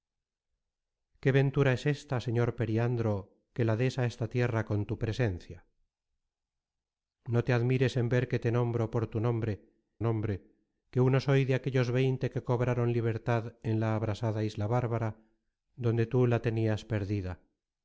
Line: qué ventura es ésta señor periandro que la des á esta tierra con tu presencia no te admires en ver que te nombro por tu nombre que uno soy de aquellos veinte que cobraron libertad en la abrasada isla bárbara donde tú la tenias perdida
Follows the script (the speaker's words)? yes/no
no